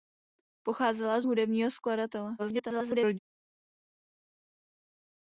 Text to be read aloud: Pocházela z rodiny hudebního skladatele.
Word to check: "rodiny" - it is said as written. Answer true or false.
false